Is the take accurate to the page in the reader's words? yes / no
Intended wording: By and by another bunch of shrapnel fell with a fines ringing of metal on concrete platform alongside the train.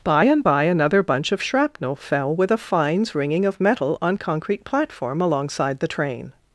yes